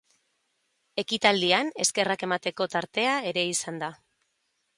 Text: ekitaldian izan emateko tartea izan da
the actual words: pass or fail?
fail